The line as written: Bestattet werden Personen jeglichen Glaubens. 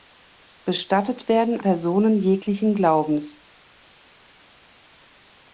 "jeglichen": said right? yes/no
yes